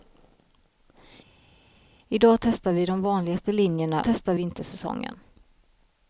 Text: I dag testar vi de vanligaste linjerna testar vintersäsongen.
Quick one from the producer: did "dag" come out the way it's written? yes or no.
yes